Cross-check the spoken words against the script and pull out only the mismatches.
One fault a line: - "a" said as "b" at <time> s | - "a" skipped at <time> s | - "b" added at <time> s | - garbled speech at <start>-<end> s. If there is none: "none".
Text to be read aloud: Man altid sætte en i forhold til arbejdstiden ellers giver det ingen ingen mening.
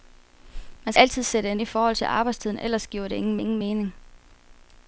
none